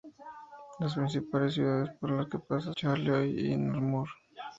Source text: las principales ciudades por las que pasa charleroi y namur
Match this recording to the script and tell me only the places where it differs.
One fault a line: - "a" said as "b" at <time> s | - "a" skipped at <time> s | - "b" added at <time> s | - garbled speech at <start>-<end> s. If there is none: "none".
none